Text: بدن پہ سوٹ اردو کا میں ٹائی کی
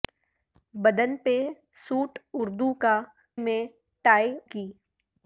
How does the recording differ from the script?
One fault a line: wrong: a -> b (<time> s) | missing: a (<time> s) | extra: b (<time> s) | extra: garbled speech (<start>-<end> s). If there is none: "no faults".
no faults